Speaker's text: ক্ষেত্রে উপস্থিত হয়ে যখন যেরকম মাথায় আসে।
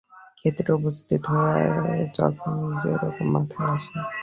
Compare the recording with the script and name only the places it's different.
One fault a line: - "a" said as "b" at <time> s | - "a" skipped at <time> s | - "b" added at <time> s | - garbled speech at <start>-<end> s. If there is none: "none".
none